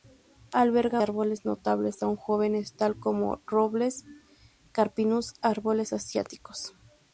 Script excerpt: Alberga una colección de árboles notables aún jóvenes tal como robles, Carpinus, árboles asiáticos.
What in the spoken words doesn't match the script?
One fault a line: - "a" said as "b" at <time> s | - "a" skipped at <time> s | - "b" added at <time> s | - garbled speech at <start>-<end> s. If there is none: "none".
- "una colección de" skipped at 1.0 s